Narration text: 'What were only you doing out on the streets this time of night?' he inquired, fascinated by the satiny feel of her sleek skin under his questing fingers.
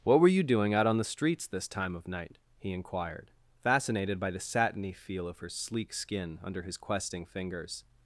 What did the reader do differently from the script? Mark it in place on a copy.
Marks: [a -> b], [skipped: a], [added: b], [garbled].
'What were [skipped: only] you doing out on the streets this time of night?' he inquired, fascinated by the satiny feel of her sleek skin under his questing fingers.